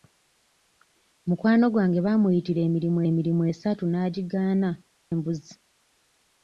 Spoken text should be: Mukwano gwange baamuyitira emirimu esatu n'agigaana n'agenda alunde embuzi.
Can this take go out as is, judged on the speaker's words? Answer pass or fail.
fail